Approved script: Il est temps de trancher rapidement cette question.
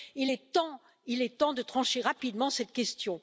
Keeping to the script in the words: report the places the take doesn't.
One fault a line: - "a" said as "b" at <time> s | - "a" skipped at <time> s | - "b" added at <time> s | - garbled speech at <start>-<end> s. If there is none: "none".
none